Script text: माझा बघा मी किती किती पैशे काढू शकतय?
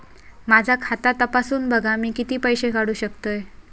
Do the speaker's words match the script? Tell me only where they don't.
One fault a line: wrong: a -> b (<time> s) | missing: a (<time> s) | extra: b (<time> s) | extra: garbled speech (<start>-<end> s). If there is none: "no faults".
extra: खाता तपासून (0.8 s)
missing: किती (2.4 s)